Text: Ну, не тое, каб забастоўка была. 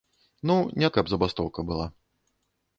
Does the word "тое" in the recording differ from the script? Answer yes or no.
yes